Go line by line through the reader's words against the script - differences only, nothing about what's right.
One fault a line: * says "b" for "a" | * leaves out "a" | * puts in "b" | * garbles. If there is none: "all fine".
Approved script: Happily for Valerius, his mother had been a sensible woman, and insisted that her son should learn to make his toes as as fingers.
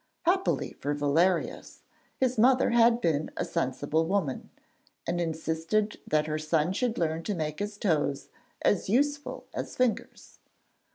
* puts in "useful"